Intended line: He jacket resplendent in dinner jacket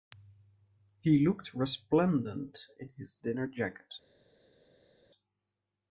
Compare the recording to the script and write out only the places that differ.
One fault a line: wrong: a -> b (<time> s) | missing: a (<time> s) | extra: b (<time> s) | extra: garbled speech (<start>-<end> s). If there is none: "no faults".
wrong: jacket -> looked (1.2 s)
extra: his (3.0 s)